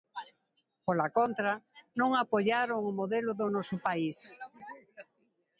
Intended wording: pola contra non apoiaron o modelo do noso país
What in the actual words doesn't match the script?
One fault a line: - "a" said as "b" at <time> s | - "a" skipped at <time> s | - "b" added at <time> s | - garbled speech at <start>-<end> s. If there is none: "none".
none